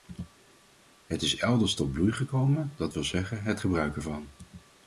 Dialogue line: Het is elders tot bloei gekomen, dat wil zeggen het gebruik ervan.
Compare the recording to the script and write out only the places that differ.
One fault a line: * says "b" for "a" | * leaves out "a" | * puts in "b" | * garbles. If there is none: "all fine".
all fine